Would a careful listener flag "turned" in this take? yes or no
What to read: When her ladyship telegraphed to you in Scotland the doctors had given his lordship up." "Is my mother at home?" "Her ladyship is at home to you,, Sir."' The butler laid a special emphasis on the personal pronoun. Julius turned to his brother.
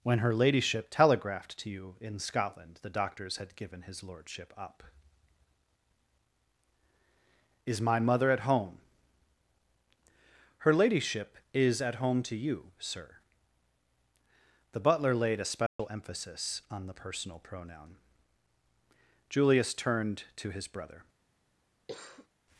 no